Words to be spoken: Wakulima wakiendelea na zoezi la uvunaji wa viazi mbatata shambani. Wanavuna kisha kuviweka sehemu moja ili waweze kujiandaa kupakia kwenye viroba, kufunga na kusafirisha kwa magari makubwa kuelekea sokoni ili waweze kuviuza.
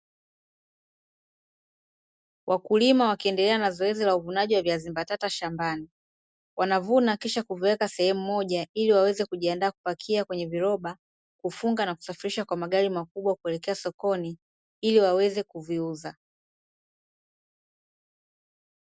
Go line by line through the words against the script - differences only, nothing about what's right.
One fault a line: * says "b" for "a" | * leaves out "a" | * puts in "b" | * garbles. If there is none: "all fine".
all fine